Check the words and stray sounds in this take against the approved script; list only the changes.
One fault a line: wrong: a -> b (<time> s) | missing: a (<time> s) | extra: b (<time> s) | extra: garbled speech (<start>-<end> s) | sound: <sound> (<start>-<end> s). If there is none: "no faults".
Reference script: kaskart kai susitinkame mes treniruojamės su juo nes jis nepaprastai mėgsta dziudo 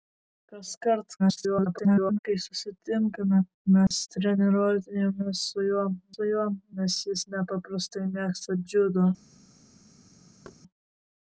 extra: garbled speech (1.2-2.2 s)
sound: dropout (3.9-3.9 s)
extra: su juo (6.1 s)
sound: thud (10.4-10.6 s)